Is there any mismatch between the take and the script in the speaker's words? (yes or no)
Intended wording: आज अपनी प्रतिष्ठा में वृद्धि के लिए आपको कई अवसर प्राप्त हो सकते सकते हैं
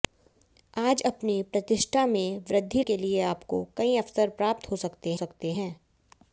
no